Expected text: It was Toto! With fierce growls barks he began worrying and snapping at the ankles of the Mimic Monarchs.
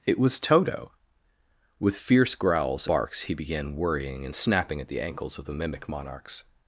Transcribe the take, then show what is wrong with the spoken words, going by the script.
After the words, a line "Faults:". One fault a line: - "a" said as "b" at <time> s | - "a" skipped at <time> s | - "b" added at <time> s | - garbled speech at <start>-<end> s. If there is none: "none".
It was Toto! With fierce growls barks he began worrying and snapping at the ankles of the Mimic Monarchs.
Faults:
none